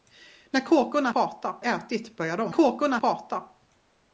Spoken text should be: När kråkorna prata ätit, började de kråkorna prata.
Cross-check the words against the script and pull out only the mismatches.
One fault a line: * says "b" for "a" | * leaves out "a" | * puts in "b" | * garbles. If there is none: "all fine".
all fine